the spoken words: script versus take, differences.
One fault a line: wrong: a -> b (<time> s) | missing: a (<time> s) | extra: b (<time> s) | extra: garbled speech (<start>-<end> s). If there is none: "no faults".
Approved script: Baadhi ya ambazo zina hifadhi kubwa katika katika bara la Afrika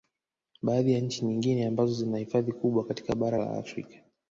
extra: nchi nyingine (1.0 s)
missing: katika (3.1 s)